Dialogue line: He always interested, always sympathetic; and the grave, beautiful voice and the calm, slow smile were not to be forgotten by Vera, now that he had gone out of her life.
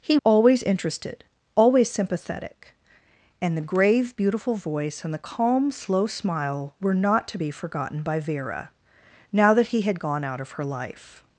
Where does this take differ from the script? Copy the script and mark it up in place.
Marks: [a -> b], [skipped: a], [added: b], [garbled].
He always interested, always sympathetic; and the grave, beautiful voice and the calm, slow smile were not to be forgotten by Vera, now that he had gone out of her life.